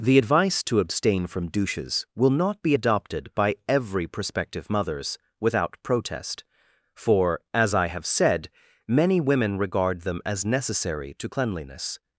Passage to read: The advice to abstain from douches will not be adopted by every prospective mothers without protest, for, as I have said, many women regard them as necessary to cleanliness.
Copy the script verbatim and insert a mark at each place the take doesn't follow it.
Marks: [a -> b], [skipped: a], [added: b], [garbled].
The advice to abstain from douches will not be adopted by every prospective mothers without protest, for, as I have said, many women regard them as necessary to cleanliness.